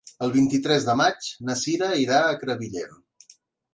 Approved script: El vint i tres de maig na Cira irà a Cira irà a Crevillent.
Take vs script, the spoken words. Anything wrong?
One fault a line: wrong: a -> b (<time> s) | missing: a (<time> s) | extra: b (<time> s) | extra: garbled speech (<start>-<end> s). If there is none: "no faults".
missing: Cira irà a (2.4 s)